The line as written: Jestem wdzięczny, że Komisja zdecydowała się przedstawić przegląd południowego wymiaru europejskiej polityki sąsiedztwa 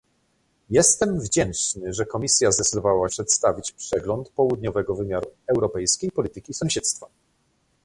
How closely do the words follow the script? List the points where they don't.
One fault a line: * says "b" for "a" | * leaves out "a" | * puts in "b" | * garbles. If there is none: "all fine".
* leaves out "się"